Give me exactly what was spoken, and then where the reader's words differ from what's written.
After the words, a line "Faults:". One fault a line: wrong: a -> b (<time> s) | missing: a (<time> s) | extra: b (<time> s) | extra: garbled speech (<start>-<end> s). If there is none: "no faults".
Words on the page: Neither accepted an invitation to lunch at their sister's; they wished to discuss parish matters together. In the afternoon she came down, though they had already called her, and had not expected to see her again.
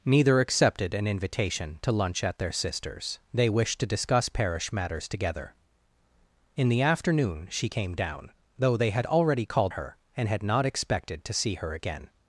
Neither accepted an invitation to lunch at their sister's; they wished to discuss parish matters together. In the afternoon she came down, though they had already called her, and had not expected to see her again.
Faults:
no faults